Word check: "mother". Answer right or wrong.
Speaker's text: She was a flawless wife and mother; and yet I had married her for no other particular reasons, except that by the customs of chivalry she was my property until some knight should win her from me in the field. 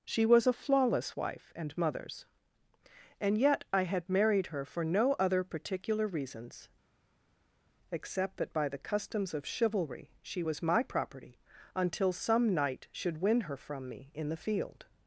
wrong